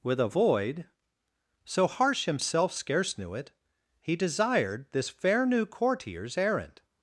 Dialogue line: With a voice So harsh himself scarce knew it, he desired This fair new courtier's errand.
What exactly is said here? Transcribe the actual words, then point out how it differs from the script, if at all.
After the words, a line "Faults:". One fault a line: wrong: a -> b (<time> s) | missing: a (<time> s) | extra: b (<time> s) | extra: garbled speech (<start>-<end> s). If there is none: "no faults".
With a void So harsh himself scarce knew it, he desired This fair new courtier's errand.
Faults:
wrong: voice -> void (0.2 s)